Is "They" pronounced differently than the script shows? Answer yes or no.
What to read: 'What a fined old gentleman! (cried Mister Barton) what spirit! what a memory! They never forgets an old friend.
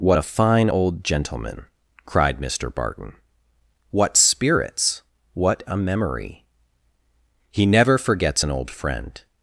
yes